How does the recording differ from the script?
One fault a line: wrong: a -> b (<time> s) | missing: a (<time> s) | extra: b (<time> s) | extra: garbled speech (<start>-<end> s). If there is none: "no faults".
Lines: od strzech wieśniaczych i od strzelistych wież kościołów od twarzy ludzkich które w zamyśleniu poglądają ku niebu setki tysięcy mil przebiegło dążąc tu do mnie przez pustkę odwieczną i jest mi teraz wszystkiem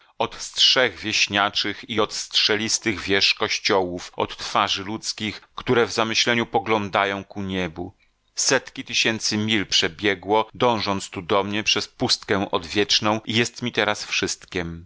no faults